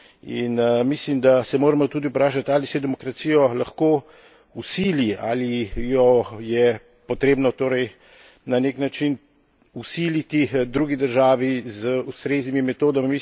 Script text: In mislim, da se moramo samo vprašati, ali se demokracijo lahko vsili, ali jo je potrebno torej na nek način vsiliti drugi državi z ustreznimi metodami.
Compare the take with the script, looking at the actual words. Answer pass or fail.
fail